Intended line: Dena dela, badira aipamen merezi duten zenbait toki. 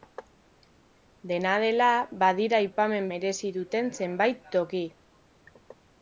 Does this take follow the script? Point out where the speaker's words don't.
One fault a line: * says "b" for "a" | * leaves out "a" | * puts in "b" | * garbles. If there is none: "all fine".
all fine